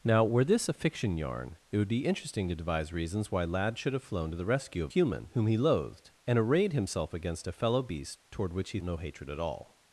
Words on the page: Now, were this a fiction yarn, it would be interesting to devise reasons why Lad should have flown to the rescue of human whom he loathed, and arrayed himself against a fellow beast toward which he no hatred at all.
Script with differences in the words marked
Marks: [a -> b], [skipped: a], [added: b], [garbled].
Now, were this a fiction yarn, it would be interesting to devise reasons why Lad should have flown to the rescue of human whom he loathed, and arrayed himself against a fellow beast toward which he no hatred at all.